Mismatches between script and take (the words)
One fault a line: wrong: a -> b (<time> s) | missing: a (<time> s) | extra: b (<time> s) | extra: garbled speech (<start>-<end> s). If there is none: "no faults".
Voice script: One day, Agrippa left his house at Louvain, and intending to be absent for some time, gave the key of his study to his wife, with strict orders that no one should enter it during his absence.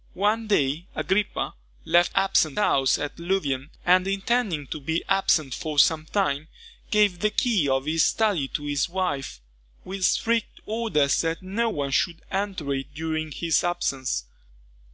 wrong: his -> absent (2.1 s)